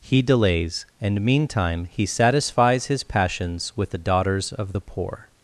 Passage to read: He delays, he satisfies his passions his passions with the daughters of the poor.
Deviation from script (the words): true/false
true